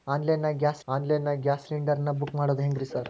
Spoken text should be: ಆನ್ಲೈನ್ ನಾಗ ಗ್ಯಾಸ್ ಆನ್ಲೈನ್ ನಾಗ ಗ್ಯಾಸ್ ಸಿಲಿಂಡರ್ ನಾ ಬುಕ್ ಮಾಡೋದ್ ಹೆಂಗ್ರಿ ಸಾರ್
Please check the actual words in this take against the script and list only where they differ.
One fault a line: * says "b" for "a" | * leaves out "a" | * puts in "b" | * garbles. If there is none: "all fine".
all fine